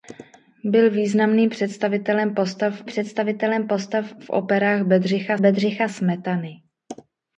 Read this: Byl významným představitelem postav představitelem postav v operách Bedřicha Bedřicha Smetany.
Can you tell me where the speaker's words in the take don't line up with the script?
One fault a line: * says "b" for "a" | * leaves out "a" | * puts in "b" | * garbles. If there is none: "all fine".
all fine